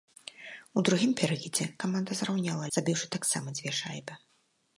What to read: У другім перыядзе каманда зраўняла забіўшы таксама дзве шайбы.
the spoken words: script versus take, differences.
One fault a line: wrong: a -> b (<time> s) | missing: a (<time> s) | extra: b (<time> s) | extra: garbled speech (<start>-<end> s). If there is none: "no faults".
no faults